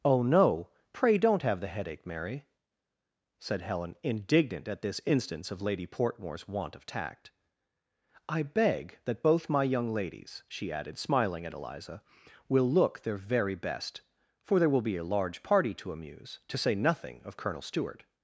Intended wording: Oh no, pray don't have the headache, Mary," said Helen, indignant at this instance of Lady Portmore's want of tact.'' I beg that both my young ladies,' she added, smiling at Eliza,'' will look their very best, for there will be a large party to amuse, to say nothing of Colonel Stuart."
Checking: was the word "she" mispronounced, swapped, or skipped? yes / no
no